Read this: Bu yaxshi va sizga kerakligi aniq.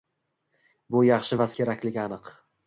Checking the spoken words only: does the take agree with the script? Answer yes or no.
no